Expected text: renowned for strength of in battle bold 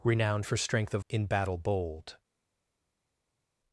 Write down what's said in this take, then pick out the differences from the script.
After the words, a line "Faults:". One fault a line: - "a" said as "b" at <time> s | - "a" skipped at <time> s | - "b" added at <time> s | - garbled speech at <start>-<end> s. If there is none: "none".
renowned for strength of in battle bold
Faults:
none